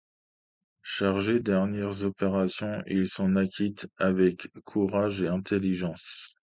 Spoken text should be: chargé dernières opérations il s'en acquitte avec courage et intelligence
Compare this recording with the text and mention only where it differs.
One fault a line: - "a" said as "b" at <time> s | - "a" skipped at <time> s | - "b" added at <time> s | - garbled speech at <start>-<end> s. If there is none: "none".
none